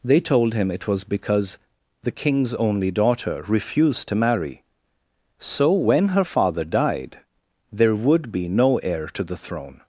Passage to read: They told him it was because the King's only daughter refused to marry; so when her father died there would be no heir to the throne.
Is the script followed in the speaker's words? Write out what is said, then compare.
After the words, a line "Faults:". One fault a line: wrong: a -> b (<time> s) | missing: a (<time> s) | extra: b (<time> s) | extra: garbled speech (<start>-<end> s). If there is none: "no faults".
They told him it was because the King's only daughter refused to marry; so when her father died there would be no heir to the throne.
Faults:
no faults